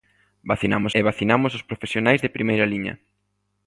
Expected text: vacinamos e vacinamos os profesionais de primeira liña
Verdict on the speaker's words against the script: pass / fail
pass